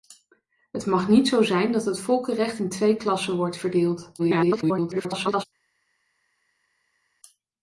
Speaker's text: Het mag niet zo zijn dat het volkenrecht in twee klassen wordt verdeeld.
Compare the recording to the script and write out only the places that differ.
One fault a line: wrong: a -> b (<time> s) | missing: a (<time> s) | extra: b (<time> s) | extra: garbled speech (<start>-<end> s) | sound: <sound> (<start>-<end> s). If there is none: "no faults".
extra: garbled speech (4.2-5.4 s)